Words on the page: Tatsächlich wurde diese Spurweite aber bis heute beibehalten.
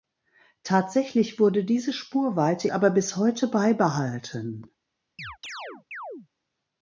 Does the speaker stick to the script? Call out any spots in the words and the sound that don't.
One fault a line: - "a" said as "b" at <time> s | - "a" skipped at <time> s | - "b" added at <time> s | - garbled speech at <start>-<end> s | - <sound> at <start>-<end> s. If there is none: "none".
- chirp at 5.2-6.3 s